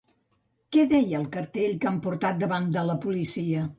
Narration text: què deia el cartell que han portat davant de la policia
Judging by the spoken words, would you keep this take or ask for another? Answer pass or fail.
pass